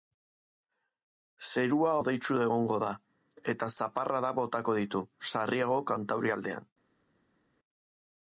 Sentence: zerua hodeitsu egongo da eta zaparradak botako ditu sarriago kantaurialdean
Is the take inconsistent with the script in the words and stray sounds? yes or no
no